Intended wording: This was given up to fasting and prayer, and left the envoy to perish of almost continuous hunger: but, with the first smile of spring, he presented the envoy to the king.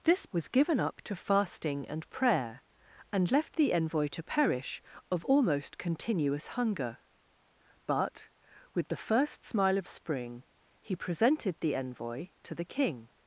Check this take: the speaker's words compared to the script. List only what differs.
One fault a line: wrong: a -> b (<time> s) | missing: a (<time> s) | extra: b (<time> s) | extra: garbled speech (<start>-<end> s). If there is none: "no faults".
no faults